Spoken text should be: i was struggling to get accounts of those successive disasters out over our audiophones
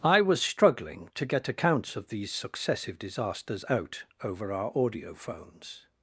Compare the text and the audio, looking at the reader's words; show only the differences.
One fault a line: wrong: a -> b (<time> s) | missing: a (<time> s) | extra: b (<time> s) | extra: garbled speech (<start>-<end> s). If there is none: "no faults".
wrong: those -> these (2.1 s)